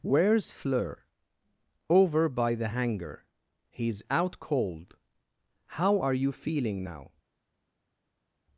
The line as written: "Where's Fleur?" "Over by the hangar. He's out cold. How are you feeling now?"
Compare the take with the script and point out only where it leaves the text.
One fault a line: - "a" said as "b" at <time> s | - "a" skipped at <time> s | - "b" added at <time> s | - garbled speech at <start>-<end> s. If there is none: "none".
none